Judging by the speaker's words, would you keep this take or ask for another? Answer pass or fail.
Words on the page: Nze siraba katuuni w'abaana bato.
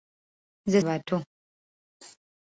fail